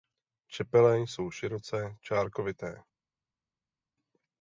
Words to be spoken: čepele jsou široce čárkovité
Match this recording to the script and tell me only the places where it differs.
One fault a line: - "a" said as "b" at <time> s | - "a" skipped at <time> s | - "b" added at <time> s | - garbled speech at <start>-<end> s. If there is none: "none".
none